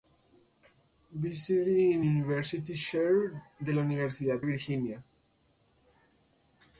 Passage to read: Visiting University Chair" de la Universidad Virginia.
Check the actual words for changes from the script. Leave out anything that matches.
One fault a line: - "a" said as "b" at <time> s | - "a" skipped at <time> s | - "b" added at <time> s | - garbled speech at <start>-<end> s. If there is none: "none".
none